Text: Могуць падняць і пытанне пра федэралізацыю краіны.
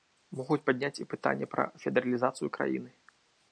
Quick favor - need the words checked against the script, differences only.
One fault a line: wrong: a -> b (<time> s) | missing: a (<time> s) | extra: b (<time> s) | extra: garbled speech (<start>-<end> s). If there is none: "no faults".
no faults